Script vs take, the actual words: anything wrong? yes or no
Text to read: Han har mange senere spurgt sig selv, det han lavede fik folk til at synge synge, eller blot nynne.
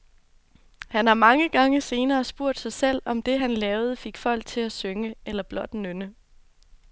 yes